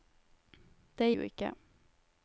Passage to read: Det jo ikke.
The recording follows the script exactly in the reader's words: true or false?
true